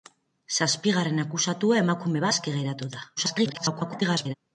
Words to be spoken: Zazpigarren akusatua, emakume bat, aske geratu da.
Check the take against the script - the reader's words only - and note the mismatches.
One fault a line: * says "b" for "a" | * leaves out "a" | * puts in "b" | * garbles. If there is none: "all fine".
* leaves out "bat"
* garbles